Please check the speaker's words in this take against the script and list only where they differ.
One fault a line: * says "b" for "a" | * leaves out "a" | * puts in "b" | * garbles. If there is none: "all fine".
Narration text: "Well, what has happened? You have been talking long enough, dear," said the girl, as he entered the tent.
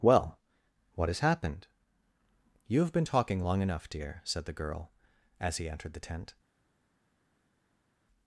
all fine